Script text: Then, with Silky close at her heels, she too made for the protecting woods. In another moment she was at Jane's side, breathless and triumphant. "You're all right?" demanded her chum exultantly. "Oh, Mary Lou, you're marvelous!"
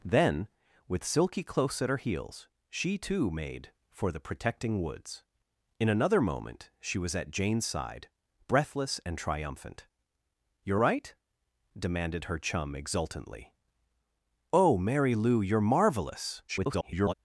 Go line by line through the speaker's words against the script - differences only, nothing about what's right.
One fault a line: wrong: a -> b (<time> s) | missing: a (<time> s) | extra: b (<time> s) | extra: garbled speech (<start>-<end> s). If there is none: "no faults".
missing: all (10.8 s)
extra: garbled speech (16.5-17.1 s)